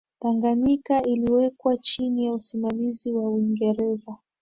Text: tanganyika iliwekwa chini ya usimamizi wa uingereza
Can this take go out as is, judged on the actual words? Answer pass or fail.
pass